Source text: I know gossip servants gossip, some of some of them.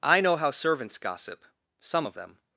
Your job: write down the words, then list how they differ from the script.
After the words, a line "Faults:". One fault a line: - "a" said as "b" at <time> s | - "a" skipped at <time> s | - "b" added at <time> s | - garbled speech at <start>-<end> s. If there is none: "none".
I know how servants gossip, some of them.
Faults:
- "gossip" said as "how" at 0.3 s
- "some of" skipped at 2.2 s